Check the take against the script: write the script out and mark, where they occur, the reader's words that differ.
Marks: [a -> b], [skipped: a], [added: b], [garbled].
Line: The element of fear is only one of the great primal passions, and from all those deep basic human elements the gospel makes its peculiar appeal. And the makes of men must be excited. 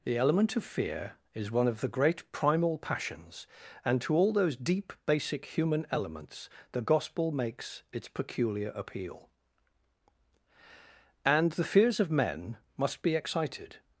The element of fear is [skipped: only] one of the great primal passions, and [from -> to] all those deep basic human elements the gospel makes its peculiar appeal. And the [makes -> fears] of men must be excited.